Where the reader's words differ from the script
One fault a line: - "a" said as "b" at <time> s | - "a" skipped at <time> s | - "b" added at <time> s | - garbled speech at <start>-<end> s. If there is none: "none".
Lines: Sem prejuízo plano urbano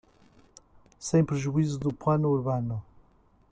- "do" added at 1.8 s